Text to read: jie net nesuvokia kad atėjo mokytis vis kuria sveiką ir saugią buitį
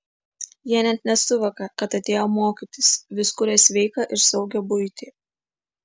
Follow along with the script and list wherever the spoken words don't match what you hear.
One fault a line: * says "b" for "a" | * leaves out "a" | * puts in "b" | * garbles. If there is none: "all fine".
all fine